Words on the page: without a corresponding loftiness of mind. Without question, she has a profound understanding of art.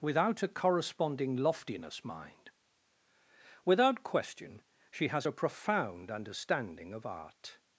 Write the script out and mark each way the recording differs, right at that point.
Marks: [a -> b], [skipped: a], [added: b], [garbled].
without a corresponding loftiness [skipped: of] mind. Without question, she has a profound understanding of art.